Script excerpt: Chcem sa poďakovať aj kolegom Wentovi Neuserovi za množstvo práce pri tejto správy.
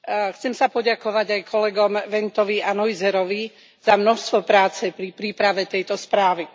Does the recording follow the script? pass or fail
fail